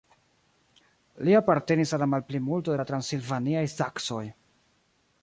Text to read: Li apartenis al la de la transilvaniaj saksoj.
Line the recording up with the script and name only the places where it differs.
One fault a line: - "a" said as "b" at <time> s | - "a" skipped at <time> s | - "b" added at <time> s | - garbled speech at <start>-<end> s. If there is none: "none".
- "malplimulto" added at 2.1 s